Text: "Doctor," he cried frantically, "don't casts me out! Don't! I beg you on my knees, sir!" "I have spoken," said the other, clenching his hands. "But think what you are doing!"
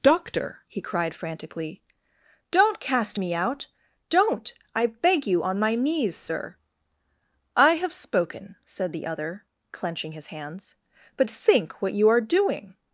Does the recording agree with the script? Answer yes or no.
no